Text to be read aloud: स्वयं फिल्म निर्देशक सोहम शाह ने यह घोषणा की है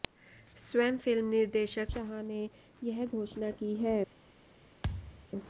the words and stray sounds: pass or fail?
fail